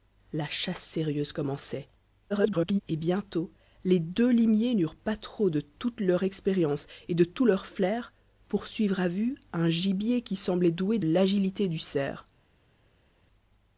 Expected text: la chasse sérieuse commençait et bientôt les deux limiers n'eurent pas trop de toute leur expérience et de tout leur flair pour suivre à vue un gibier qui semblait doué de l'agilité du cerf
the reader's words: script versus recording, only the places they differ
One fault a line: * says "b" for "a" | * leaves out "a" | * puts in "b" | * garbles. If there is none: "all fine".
* garbles
* leaves out "de"